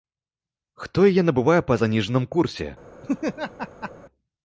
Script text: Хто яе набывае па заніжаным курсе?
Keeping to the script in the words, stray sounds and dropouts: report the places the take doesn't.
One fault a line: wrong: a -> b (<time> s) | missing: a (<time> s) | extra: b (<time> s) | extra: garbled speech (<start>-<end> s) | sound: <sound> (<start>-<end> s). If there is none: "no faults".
sound: laugh (3.0-3.9 s)